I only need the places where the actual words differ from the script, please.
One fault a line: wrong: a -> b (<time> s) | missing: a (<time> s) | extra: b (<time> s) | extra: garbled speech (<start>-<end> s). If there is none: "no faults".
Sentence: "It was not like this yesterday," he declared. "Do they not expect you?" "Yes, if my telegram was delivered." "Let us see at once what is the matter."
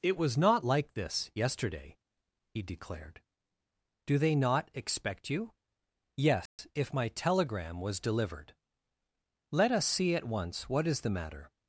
no faults